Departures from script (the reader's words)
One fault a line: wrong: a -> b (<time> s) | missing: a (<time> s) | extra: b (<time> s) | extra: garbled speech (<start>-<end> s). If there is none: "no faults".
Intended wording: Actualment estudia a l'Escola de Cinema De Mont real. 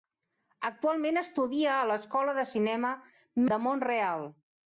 no faults